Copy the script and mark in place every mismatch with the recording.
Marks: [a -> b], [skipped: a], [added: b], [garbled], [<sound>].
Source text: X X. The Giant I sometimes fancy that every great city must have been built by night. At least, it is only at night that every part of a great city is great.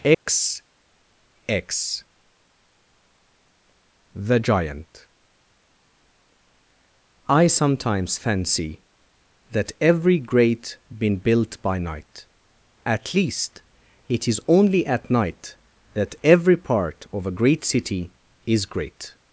X [dropout] X. The Giant I sometimes fancy that every great [skipped: city must have] been built by night. At least, it is only at night that every part of a great city is great.